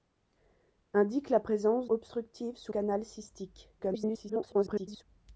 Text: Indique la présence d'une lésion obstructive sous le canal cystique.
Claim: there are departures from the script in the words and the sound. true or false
true